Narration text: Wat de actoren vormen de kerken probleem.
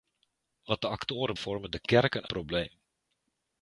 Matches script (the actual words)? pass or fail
pass